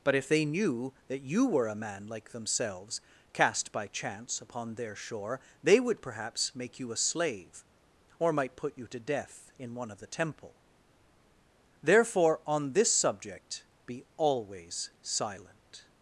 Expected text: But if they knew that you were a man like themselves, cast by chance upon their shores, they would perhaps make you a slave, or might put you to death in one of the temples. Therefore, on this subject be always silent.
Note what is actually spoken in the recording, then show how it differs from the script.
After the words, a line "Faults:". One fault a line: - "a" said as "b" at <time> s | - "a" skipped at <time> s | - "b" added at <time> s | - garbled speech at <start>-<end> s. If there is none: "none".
But if they knew that you were a man like themselves, cast by chance upon their shore, they would perhaps make you a slave, or might put you to death in one of the temple. Therefore, on this subject be always silent.
Faults:
- "shores" said as "shore" at 5.0 s
- "temples" said as "temple" at 10.1 s